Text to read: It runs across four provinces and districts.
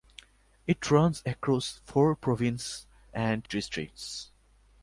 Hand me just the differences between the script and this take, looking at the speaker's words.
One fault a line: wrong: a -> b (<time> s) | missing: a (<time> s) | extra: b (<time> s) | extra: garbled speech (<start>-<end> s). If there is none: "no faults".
no faults